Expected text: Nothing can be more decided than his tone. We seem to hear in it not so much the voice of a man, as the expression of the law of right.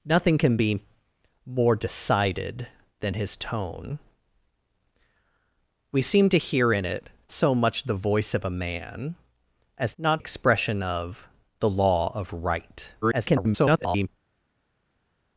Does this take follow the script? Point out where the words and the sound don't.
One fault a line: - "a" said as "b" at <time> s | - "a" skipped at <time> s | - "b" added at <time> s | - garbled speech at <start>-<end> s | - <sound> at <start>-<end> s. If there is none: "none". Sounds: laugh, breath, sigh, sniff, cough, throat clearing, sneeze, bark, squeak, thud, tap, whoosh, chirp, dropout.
- "not" skipped at 7.1 s
- "the" said as "not" at 10.0 s
- garbled speech at 13.0-14.1 s